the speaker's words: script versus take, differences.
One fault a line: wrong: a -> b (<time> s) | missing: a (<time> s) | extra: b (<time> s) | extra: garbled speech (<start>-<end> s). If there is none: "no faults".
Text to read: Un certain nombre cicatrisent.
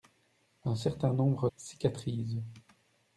no faults